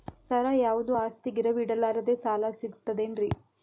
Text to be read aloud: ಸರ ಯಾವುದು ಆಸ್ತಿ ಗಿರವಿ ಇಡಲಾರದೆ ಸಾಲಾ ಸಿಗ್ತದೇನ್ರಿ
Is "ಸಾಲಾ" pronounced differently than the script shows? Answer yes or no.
no